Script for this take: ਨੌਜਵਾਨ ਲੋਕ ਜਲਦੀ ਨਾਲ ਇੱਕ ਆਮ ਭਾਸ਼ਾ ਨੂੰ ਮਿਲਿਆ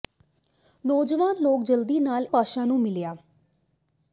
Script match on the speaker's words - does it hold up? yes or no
no